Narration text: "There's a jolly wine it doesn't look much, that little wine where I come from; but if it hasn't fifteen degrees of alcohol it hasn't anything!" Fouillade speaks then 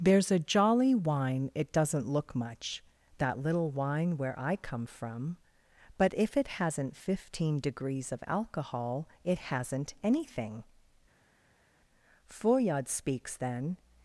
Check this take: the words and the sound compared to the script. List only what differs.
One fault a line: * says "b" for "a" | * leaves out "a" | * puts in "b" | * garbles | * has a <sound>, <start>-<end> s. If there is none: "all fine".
all fine